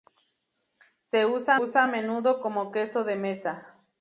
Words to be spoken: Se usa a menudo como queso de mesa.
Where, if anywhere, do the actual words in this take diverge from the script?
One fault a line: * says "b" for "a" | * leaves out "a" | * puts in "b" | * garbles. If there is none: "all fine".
* puts in "usa"